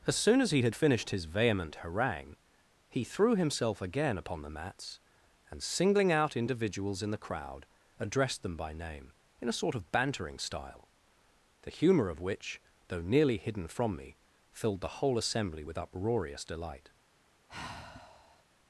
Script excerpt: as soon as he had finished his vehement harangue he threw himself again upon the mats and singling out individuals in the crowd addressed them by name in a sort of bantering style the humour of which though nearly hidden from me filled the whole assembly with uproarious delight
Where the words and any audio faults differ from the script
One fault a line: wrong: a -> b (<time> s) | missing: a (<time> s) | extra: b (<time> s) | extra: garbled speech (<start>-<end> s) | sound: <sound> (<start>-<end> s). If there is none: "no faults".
sound: sigh (17.5-18.4 s)